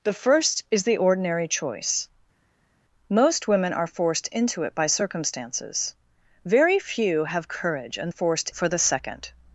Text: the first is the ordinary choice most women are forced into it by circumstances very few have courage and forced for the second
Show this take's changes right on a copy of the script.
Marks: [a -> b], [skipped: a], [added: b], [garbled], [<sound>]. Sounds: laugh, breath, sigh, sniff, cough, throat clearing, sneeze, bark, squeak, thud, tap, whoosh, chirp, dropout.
the first is the ordinary choice most women are forced into it by circumstances very few have courage and forced for the second